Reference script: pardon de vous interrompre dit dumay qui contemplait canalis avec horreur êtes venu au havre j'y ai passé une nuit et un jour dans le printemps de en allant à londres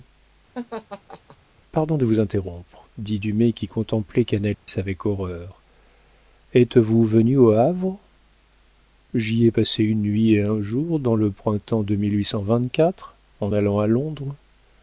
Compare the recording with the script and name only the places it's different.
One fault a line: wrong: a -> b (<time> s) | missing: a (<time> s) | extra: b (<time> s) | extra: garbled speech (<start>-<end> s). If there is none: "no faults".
extra: vous (6.8 s)